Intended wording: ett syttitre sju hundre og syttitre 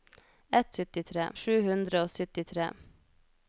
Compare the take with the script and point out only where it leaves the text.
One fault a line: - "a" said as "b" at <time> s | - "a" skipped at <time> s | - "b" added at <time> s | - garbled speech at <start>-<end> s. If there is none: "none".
none